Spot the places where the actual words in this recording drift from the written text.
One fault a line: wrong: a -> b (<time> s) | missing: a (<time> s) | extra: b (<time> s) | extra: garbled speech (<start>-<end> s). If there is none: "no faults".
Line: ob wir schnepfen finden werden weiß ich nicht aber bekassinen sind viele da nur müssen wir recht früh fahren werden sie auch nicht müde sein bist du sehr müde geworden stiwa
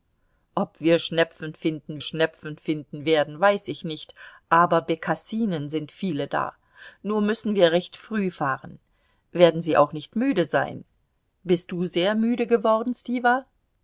extra: schnepfen finden (2.0 s)